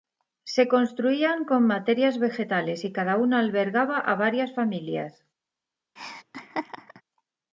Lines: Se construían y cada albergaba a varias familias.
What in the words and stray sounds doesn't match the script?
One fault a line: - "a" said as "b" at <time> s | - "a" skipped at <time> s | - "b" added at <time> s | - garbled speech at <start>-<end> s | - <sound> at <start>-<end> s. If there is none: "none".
- "con materias vegetales" added at 1.4 s
- "una" added at 3.2 s
- laugh at 6.0-7.0 s